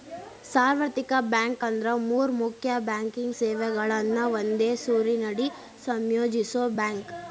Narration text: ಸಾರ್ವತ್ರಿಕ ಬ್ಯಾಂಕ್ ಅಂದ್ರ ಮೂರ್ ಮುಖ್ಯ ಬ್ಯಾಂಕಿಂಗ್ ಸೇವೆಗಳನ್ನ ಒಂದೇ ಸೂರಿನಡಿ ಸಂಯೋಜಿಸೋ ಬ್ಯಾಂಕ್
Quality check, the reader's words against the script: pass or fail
pass